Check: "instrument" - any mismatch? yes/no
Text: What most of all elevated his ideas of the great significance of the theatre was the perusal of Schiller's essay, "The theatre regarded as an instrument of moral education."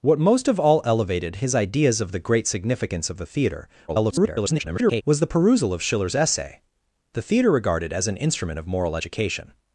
no